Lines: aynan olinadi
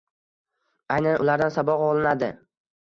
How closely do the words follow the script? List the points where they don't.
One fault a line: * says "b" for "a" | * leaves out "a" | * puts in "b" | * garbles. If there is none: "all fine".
* puts in "ulardan saboq"